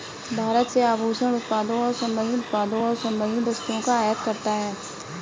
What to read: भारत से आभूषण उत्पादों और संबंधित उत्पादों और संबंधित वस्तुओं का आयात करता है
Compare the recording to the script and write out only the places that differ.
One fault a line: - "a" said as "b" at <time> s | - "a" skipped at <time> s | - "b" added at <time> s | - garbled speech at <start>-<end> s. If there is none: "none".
none